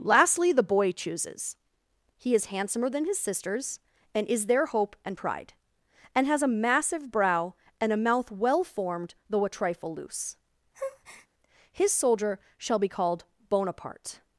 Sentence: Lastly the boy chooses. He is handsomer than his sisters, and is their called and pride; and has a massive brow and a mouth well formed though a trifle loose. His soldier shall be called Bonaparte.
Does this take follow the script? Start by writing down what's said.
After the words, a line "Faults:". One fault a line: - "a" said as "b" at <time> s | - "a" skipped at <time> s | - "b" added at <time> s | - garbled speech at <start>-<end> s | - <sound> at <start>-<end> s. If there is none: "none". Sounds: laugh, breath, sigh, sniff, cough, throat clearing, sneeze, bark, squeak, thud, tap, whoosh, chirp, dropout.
Lastly the boy chooses. He is handsomer than his sisters, and is their hope and pride; and has a massive brow and a mouth well formed though a trifle loose. His soldier shall be called Bonaparte.
Faults:
- "called" said as "hope" at 4.7 s
- breath at 10.7-11.3 s